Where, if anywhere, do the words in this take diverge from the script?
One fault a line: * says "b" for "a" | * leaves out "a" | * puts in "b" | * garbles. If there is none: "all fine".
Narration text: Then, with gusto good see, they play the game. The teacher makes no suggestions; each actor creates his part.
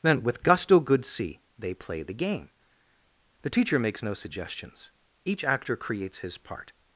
all fine